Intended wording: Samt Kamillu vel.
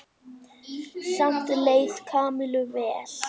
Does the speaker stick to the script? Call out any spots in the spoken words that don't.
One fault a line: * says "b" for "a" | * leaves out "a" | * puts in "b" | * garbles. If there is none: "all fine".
* puts in "leið"